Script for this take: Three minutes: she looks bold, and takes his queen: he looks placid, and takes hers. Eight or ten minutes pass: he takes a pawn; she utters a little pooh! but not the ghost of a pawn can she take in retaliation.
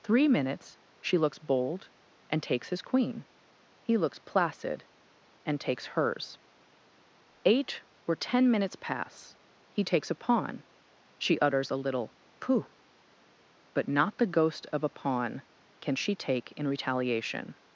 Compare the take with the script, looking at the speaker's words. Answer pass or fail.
pass